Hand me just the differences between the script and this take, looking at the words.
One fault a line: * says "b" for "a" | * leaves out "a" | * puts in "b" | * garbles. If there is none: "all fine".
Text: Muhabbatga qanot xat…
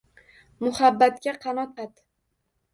all fine